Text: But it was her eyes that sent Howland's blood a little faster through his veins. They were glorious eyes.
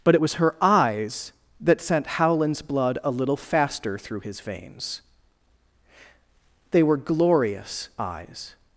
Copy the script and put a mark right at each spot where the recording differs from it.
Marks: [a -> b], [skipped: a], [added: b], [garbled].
But it was her eyes that sent Howland's blood a little faster through his veins. They were glorious eyes.